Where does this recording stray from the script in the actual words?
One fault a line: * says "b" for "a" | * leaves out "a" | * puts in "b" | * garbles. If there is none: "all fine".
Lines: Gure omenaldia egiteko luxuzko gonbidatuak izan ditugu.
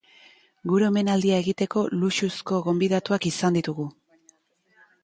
all fine